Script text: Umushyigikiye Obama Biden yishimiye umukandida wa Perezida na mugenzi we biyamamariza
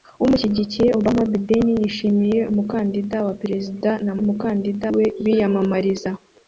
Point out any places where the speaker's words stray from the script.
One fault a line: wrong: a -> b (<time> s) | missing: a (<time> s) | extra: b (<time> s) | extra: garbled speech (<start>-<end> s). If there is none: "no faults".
wrong: mugenzi -> umukandida (4.2 s)